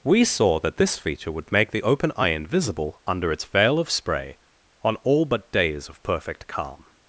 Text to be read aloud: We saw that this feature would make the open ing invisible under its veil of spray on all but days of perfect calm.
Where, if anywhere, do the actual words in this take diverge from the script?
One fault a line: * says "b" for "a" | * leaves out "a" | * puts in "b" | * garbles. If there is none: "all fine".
* says "eye" for "ing"